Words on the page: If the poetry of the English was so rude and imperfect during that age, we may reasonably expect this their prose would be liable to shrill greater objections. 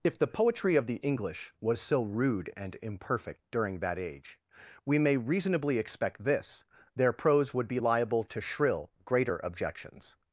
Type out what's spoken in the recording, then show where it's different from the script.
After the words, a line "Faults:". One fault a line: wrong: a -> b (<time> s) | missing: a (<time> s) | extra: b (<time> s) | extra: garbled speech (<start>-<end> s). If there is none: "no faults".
If the poetry of the English was so rude and imperfect during that age, we may reasonably expect this their prose would be liable to shrill greater objections.
Faults:
no faults